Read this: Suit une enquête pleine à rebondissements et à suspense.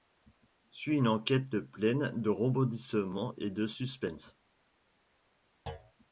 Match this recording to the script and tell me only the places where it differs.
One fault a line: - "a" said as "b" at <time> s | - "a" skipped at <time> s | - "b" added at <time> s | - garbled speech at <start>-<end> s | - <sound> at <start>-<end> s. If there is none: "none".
- "à" said as "de" at 2.2 s
- "à" said as "de" at 3.5 s
- thud at 5.7-5.9 s